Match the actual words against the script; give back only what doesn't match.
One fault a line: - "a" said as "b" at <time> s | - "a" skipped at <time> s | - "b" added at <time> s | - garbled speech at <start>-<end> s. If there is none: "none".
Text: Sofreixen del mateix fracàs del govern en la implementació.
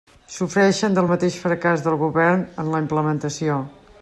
none